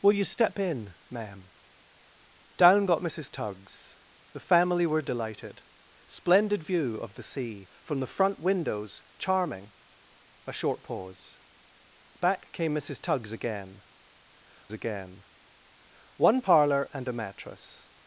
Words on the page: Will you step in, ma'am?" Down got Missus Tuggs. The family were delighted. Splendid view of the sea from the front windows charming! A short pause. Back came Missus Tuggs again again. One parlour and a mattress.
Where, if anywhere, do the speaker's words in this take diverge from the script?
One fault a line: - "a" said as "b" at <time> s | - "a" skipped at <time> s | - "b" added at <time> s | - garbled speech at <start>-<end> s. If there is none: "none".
none